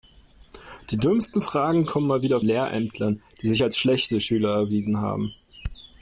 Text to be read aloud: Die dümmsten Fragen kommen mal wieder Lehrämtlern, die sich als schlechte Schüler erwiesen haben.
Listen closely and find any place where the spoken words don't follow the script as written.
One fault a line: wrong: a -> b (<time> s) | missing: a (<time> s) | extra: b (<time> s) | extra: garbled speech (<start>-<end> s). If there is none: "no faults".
no faults